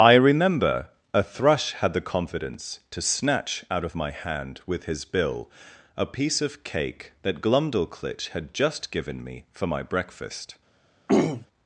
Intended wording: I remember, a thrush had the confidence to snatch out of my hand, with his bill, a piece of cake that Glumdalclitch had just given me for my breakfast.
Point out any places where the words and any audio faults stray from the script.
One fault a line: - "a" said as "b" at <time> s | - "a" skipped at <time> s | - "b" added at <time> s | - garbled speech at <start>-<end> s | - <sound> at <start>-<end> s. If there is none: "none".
- throat clearing at 11.1-11.5 s